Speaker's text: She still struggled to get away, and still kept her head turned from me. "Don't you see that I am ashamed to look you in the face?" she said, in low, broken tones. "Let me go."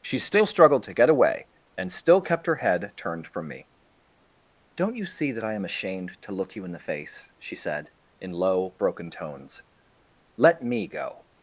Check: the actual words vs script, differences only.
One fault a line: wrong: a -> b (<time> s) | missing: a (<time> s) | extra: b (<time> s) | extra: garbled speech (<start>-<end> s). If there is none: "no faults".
no faults